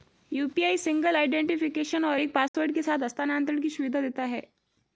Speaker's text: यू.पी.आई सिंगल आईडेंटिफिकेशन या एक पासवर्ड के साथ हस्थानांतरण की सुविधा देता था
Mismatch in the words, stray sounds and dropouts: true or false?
true